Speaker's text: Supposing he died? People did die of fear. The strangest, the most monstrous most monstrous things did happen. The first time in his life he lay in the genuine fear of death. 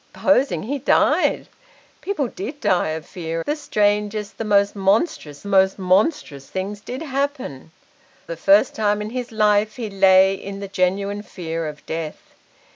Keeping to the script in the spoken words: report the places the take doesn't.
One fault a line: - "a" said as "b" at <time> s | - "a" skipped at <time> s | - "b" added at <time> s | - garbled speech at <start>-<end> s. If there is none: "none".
none